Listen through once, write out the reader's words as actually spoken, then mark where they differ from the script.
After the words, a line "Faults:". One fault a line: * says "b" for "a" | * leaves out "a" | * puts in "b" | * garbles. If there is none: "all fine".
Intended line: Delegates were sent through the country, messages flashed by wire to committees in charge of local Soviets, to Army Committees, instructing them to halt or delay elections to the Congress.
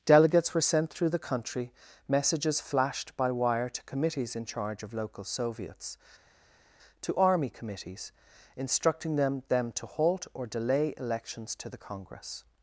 Delegates were sent through the country, messages flashed by wire to committees in charge of local Soviets, to Army Committees, instructing them them to halt or delay elections to the Congress.
Faults:
* puts in "them"